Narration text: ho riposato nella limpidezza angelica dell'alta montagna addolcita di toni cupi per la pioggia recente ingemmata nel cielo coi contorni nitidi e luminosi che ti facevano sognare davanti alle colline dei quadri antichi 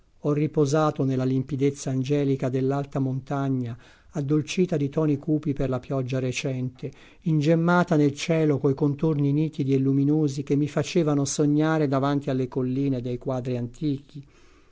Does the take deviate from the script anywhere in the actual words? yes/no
yes